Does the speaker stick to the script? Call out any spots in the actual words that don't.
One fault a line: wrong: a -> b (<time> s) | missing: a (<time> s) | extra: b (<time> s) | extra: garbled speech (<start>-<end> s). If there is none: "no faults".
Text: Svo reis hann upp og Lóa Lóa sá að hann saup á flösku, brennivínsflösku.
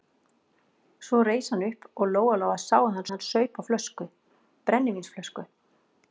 extra: hann (3.1 s)